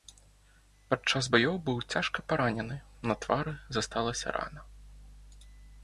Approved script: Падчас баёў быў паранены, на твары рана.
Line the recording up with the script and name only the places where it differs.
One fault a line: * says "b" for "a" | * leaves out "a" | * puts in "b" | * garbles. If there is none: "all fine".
* puts in "цяжка"
* puts in "засталася"